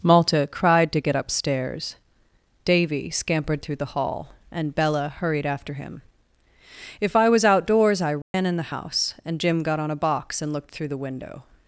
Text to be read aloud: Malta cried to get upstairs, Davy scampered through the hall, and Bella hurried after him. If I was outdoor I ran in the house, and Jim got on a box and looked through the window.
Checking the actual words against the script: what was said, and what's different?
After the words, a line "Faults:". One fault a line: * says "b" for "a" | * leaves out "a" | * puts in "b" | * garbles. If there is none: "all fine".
Malta cried to get upstairs, Davy scampered through the hall, and Bella hurried after him. If I was outdoors I ran in the house, and Jim got on a box and looked through the window.
Faults:
* says "outdoors" for "outdoor"